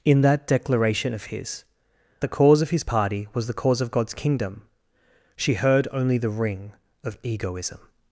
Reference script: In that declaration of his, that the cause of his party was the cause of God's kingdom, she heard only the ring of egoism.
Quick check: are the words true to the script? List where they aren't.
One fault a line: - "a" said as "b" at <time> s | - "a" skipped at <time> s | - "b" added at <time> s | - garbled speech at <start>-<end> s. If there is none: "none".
- "that" skipped at 1.6 s